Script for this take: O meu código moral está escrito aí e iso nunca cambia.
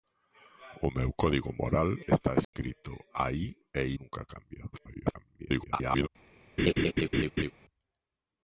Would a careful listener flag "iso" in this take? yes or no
yes